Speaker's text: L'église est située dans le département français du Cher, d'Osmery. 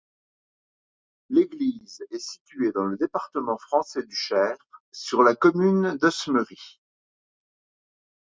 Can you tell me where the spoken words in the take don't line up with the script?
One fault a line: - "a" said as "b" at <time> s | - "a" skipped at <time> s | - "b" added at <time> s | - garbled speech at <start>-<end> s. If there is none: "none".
- "sur la commune" added at 4.9 s